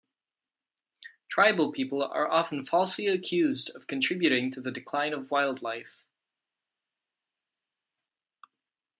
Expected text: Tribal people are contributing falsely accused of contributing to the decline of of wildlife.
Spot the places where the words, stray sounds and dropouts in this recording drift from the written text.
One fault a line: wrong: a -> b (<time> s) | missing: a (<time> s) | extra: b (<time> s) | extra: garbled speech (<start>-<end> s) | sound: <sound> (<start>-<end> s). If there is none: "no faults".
wrong: contributing -> often (2.3 s)
missing: of (5.3 s)